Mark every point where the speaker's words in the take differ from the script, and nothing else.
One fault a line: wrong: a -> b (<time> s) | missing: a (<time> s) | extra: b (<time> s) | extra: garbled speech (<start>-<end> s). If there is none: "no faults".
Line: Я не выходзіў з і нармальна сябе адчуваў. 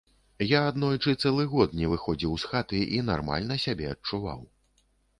extra: аднойчы цэлы год (0.7 s)
extra: хаты (2.6 s)